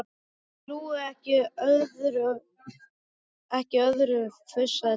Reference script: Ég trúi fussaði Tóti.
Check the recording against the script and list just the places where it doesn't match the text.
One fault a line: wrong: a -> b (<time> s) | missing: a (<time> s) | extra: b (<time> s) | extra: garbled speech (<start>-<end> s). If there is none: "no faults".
extra: ekki öðru (1.1 s)